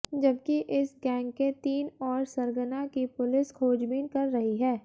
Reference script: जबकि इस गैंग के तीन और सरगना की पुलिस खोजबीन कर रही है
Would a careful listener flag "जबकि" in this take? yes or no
no